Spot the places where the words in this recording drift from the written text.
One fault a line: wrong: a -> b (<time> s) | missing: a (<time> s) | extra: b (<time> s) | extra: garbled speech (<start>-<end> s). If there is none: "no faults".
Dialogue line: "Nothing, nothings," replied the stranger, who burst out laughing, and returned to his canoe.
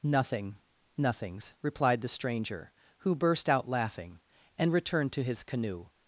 no faults